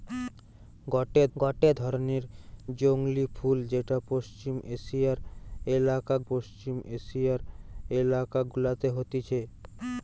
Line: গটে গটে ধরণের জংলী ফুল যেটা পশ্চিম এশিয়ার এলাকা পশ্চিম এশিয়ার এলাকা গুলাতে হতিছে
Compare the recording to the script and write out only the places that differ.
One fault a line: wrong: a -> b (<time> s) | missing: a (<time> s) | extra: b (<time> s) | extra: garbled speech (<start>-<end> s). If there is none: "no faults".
no faults